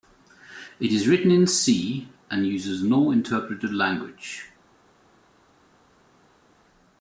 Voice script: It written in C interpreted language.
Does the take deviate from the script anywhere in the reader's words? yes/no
yes